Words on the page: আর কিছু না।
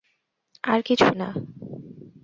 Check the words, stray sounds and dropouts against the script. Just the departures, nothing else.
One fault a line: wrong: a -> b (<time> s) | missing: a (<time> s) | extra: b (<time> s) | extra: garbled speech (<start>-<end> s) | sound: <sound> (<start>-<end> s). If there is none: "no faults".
no faults